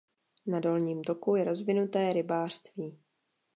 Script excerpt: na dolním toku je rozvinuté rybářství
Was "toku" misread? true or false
false